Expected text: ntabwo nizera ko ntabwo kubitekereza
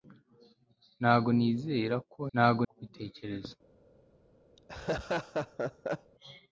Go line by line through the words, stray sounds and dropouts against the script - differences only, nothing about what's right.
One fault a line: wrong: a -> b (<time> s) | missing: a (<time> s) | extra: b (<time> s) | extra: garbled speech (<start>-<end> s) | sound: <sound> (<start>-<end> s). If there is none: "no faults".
sound: laugh (4.6-6.1 s)